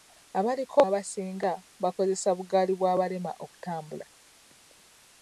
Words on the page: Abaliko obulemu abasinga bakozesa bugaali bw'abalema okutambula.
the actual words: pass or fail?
fail